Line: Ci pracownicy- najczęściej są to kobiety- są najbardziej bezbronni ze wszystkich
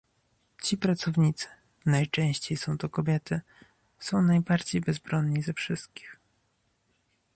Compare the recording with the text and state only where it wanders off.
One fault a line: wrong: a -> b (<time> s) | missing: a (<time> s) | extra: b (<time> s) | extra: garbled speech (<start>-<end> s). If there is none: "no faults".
no faults